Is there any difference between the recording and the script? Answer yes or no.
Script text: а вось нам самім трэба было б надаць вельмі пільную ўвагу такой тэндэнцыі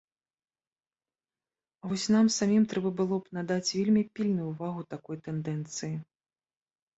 no